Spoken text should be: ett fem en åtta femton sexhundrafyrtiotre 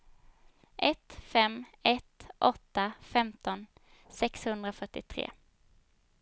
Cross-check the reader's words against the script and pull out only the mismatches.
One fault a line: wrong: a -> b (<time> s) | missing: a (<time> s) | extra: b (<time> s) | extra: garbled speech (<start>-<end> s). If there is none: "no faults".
wrong: en -> ett (1.8 s)